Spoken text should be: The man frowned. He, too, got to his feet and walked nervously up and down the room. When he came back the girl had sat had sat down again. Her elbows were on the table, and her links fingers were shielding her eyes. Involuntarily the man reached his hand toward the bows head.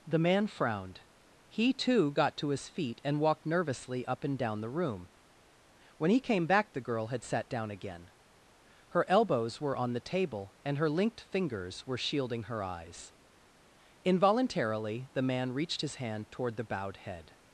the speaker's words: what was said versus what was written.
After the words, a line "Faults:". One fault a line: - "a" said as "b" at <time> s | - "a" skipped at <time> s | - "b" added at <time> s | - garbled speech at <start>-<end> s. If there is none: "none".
The man frowned. He, too, got to his feet and walked nervously up and down the room. When he came back the girl had sat down again. Her elbows were on the table, and her linked fingers were shielding her eyes. Involuntarily the man reached his hand toward the bowed head.
Faults:
- "had sat" skipped at 7.5 s
- "links" said as "linked" at 10.9 s
- "bows" said as "bowed" at 16.6 s